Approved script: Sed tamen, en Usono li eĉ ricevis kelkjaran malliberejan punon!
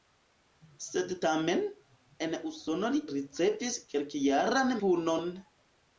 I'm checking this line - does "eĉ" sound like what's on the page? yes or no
no